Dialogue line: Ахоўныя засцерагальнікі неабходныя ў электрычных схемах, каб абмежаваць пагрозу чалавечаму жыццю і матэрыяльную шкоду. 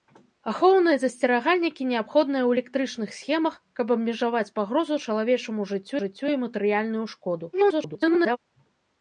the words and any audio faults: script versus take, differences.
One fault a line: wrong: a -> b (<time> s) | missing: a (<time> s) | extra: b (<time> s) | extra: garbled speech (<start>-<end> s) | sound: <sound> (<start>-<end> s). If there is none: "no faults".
extra: жыццю (6.0 s)
extra: garbled speech (7.5-8.4 s)